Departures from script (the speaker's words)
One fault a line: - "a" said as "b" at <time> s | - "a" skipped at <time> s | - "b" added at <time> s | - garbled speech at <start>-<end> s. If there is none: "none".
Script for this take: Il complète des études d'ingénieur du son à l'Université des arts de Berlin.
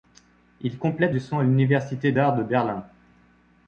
- "des études d'ingénieur" skipped at 1.1 s
- "des" skipped at 2.1 s